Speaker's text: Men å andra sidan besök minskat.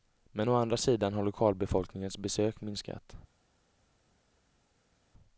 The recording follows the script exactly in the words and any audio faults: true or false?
false